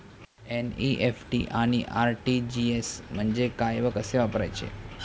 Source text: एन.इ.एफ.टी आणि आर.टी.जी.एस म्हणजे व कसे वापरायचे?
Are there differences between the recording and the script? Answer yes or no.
yes